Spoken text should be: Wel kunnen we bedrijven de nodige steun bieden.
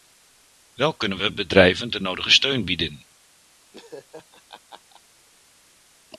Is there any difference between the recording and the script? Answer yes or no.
no